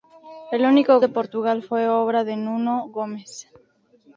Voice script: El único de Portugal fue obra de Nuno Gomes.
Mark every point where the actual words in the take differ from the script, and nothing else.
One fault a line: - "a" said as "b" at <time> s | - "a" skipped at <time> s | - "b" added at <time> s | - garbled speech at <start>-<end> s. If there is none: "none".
none